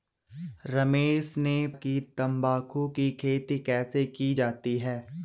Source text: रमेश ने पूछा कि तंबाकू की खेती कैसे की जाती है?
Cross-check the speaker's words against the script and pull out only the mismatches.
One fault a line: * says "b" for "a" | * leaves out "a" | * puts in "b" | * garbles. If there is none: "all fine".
* leaves out "पूछा"